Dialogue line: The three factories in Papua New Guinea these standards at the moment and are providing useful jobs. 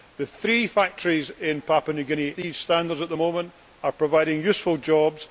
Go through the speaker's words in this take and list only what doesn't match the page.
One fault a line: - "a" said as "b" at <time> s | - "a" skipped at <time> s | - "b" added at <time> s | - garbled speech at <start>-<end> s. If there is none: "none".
none